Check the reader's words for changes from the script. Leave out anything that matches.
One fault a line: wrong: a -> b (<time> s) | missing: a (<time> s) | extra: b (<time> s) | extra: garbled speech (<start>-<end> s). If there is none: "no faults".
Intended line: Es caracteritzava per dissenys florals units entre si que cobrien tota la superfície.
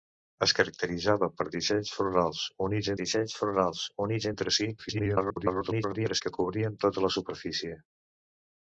extra: dissenys florals units (3.0 s)
extra: garbled speech (4.8-6.2 s)